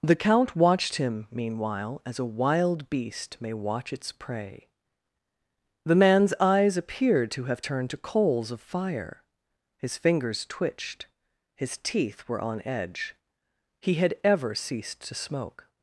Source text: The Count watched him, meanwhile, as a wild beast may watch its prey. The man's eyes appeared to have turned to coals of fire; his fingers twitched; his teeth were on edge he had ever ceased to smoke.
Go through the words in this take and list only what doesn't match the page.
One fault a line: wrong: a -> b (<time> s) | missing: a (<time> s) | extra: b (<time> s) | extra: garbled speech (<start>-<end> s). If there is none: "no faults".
no faults